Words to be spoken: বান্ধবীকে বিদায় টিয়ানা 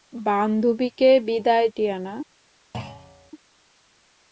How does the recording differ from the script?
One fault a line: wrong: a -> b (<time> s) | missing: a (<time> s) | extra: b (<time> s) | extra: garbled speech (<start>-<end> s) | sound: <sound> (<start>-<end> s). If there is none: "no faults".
sound: thud (2.7-3.3 s)